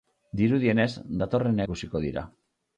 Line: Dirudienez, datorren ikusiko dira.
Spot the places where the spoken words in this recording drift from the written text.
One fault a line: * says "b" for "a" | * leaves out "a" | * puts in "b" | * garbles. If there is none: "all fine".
all fine